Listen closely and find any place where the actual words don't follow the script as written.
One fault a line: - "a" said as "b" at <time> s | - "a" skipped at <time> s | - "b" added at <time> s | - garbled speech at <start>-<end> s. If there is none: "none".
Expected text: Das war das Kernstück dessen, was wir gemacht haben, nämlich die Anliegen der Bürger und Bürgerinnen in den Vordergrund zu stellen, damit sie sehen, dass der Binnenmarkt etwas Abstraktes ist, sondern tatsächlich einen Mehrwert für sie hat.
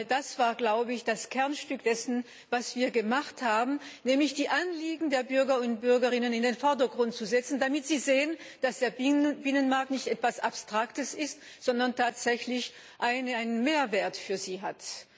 - "nicht" added at 9.9 s